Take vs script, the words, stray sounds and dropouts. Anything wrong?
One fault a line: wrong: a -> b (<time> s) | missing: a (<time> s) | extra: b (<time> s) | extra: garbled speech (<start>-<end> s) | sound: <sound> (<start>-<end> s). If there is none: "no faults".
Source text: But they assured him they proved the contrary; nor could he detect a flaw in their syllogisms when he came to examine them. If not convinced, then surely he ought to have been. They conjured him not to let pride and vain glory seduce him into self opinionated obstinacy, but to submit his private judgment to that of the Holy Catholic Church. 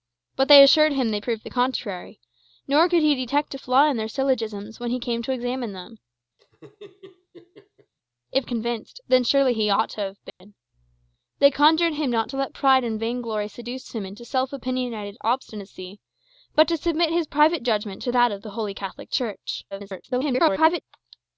sound: laugh (6.4-7.9 s)
missing: not (8.5 s)
sound: dropout (10.3-10.4 s)
extra: garbled speech (19.7-20.8 s)